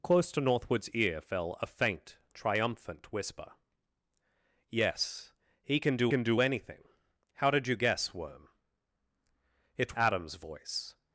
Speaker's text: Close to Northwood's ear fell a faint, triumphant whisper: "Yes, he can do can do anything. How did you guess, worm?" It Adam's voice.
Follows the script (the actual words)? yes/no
yes